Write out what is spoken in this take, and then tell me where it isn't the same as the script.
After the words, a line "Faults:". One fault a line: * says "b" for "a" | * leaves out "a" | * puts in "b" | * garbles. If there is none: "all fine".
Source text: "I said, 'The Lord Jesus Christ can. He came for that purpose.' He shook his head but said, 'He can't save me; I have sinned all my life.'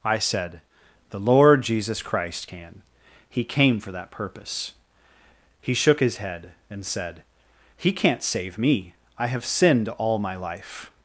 "I said, 'The Lord Jesus Christ can. He came for that purpose.' He shook his head and said, 'He can't save me; I have sinned all my life.'
Faults:
* says "and" for "but"